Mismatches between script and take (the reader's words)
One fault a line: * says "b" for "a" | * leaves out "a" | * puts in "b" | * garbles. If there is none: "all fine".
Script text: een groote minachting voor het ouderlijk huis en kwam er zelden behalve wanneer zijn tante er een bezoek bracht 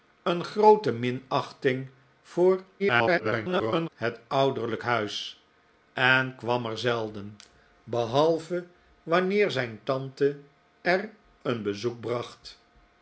* garbles